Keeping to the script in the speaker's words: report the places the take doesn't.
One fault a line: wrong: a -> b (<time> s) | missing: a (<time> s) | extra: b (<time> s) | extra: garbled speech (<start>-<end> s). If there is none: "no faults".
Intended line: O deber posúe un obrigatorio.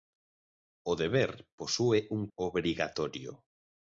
no faults